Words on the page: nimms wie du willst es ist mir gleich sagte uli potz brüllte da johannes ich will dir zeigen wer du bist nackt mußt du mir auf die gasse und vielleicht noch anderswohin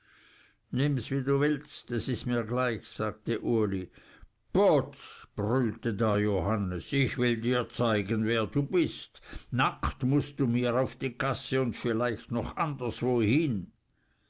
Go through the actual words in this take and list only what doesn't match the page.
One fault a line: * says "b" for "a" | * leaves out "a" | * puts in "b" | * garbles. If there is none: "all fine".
all fine